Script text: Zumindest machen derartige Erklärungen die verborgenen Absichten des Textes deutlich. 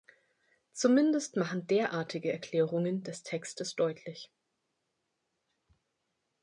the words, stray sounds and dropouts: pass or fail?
fail